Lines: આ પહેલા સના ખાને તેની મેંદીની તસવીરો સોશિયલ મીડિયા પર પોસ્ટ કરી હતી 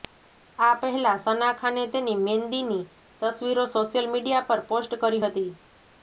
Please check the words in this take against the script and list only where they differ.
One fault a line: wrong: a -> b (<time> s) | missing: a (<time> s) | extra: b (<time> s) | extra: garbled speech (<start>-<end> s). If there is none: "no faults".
no faults